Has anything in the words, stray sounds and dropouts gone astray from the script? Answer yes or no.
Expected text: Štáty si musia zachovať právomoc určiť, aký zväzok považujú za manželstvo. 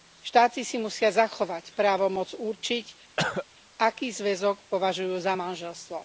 yes